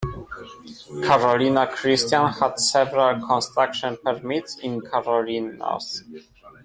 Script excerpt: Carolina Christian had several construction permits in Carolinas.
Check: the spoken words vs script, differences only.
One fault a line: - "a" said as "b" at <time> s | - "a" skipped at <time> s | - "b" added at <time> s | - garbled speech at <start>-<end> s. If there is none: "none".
none